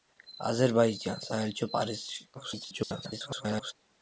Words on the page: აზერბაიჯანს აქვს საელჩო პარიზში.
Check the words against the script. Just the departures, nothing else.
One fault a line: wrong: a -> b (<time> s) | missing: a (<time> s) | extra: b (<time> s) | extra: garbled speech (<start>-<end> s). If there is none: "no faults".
missing: აქვს (1.3 s)
extra: garbled speech (2.4-3.7 s)